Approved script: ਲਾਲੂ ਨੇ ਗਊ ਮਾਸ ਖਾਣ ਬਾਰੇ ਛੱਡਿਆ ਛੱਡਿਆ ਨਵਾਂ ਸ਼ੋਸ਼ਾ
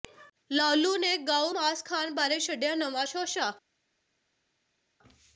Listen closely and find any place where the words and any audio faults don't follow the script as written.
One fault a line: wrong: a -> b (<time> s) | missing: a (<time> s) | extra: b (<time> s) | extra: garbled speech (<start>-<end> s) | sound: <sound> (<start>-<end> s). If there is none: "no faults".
missing: ਛੱਡਿਆ (2.7 s)